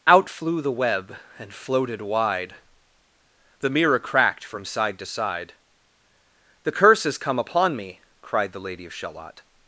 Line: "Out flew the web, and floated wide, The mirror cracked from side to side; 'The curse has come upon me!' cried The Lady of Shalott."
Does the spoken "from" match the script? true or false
true